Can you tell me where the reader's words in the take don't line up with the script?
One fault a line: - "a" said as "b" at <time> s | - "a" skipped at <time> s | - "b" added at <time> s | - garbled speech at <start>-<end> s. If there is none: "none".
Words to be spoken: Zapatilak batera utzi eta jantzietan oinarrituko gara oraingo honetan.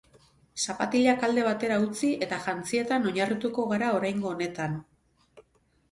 - "alde" added at 1.3 s